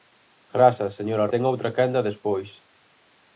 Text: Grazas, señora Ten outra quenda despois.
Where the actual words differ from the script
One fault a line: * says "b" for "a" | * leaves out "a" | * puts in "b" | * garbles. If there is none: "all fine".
all fine